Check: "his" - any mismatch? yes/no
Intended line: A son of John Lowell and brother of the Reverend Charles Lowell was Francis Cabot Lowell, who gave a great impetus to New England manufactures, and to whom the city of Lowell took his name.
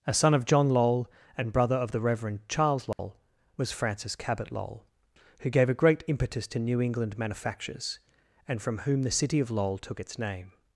yes